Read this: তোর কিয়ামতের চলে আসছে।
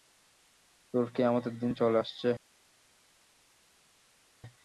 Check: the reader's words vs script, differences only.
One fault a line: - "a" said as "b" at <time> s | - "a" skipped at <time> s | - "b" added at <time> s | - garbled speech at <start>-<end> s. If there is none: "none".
- "দিন" added at 1.6 s